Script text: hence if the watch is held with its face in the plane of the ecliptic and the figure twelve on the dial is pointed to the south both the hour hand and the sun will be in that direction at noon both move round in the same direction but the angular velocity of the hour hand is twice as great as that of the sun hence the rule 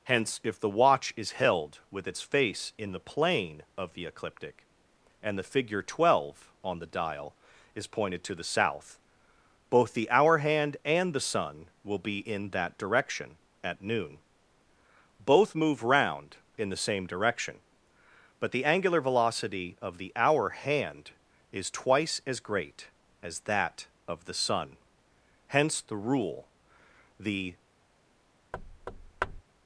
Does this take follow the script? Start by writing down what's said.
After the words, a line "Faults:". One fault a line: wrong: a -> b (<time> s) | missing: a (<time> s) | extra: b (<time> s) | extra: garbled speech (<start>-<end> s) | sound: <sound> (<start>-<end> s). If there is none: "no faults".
hence if the watch is held with its face in the plane of the ecliptic and the figure twelve on the dial is pointed to the south both the hour hand and the sun will be in that direction at noon both move round in the same direction but the angular velocity of the hour hand is twice as great as that of the sun hence the rule the
Faults:
extra: the (27.2 s)
sound: thud (28.5-29.4 s)